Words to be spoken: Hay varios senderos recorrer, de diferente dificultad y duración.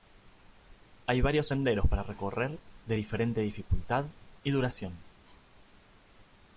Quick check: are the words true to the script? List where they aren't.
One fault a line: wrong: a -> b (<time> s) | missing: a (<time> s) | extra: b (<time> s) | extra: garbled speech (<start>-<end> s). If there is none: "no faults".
extra: para (1.9 s)